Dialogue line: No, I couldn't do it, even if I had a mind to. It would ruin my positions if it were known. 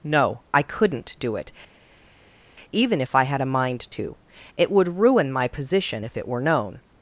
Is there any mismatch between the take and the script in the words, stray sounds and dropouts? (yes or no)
yes